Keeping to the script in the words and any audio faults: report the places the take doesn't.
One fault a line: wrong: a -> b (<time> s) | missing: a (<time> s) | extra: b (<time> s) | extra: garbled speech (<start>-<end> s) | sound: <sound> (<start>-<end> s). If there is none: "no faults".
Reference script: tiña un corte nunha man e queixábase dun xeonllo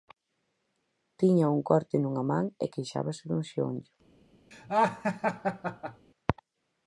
sound: laugh (4.5-6.1 s)